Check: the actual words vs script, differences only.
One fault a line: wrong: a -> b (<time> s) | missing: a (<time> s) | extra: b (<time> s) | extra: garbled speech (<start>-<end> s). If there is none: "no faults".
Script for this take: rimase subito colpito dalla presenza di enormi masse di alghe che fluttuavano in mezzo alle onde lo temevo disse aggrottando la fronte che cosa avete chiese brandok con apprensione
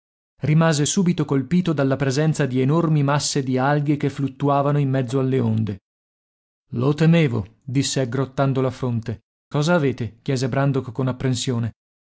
missing: che (9.2 s)